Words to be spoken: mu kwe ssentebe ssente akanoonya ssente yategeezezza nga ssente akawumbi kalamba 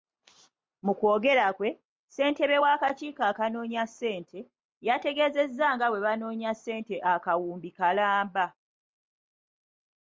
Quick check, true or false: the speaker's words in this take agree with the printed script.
false